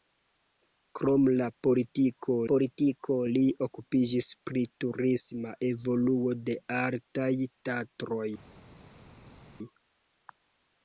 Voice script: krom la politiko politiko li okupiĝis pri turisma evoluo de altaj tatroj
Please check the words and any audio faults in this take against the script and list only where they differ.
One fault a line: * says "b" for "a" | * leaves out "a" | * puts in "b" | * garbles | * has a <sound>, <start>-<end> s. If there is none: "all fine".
all fine